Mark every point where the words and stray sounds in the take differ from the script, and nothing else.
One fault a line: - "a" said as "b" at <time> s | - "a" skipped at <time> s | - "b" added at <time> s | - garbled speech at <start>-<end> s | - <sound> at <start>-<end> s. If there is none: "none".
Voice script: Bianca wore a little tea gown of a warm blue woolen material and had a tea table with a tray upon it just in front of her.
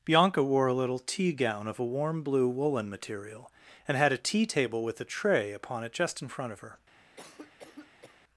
- cough at 7.2-8.2 s